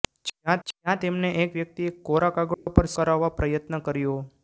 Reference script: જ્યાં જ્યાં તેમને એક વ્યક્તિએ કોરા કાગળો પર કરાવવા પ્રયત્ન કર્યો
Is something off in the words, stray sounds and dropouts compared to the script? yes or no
yes